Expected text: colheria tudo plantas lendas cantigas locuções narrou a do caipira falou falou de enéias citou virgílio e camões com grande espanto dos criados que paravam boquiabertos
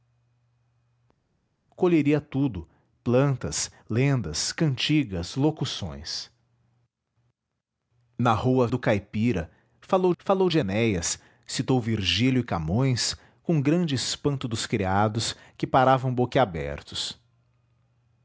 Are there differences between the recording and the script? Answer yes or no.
no